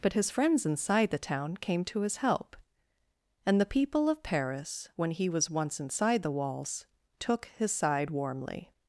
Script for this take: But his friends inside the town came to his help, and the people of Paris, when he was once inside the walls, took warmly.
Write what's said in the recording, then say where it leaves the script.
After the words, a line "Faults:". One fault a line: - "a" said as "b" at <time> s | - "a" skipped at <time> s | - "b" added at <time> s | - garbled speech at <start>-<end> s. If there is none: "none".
But his friends inside the town came to his help, and the people of Paris, when he was once inside the walls, took his side warmly.
Faults:
- "his side" added at 7.6 s